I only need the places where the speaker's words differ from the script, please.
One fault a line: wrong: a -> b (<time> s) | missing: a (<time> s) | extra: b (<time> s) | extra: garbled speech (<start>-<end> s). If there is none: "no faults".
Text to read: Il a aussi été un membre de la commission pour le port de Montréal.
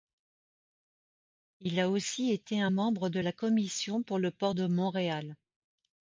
no faults